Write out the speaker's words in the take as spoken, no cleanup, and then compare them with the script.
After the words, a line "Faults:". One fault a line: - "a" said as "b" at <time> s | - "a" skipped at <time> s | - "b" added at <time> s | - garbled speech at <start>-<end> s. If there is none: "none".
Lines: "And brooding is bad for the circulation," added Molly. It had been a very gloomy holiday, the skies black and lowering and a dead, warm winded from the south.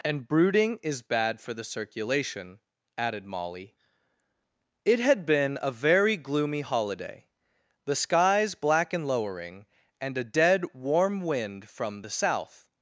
"And brooding is bad for the circulation," added Molly. It had been a very gloomy holiday, the skies black and lowering and a dead, warm wind from the south.
Faults:
- "winded" said as "wind" at 11.2 s